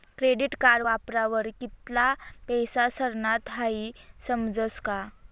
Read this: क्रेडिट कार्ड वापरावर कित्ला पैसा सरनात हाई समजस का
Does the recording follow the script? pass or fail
pass